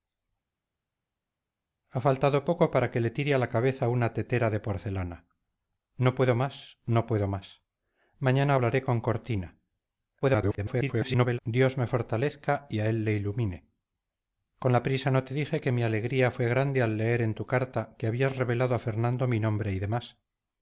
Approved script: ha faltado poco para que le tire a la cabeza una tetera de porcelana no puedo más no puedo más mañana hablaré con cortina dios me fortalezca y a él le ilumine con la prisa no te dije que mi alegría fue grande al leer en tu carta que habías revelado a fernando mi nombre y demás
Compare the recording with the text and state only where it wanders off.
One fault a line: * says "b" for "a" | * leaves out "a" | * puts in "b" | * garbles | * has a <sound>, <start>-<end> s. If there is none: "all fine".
* garbles